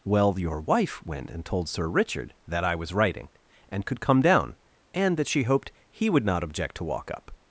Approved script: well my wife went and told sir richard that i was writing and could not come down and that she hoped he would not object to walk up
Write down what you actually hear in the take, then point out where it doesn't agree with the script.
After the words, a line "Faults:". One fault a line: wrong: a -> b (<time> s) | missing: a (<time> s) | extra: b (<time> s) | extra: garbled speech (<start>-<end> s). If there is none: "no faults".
well your wife went and told sir richard that i was writing and could come down and that she hoped he would not object to walk up
Faults:
wrong: my -> your (0.4 s)
missing: not (4.0 s)